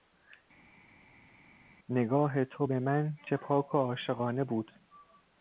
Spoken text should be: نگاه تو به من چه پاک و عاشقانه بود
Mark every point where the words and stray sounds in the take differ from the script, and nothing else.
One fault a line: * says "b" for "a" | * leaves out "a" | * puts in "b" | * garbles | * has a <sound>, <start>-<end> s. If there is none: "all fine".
all fine